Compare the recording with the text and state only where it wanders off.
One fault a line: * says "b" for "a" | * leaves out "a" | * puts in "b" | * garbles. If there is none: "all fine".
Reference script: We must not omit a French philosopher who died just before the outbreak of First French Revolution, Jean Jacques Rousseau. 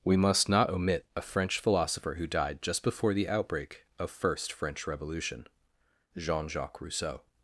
all fine